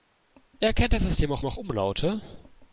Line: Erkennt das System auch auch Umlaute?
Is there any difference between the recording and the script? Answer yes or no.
no